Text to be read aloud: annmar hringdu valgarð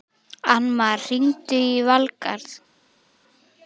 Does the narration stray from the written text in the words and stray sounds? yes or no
yes